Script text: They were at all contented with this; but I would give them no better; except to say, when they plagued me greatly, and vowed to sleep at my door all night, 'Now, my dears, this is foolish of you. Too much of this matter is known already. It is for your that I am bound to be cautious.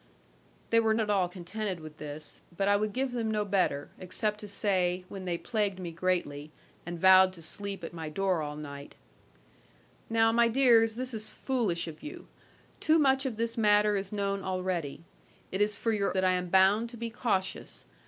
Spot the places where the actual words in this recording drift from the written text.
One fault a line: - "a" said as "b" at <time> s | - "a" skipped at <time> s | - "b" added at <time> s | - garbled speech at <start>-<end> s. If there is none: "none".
none